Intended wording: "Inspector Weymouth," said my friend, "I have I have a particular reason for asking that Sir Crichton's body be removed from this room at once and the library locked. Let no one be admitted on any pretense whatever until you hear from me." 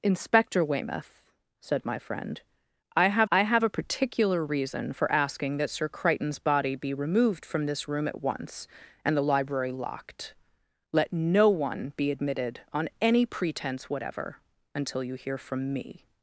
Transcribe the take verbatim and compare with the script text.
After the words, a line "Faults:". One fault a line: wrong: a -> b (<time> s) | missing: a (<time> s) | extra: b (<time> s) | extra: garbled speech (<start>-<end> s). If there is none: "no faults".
"Inspector Weymouth," said my friend, "I have I have a particular reason for asking that Sir Crichton's body be removed from this room at once and the library locked. Let no one be admitted on any pretense whatever until you hear from me."
Faults:
no faults